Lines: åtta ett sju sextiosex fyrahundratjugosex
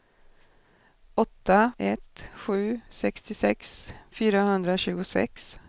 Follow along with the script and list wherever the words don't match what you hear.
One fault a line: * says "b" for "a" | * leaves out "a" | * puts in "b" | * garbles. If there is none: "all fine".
all fine